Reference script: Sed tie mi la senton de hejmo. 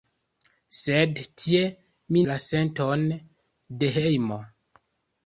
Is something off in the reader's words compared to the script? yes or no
no